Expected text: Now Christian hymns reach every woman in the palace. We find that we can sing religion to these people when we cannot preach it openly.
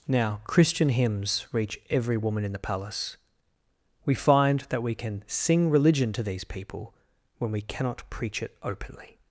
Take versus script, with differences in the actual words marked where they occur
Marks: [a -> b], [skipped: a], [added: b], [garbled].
Now Christian hymns reach every woman in the palace. We find that we can sing religion to these people when we cannot preach it openly.